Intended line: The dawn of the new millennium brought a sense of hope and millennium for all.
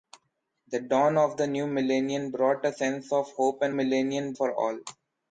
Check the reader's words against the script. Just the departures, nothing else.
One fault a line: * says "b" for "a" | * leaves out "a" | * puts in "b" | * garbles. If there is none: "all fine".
all fine